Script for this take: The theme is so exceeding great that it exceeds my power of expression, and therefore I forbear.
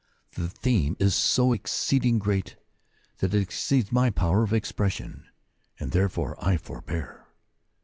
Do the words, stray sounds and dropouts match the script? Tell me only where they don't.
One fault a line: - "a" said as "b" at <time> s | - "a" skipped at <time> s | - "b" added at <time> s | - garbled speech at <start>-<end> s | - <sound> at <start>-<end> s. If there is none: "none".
none